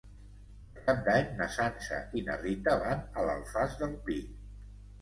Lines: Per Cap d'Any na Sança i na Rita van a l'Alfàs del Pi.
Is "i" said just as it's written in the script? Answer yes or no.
yes